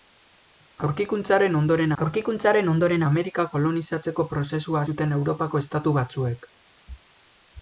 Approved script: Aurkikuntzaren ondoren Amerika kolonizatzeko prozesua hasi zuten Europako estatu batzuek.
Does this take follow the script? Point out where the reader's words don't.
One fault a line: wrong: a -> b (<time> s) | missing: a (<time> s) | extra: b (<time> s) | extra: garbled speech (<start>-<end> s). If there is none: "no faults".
extra: aurkikuntzaren ondoren (2.0 s)
missing: hasi (4.8 s)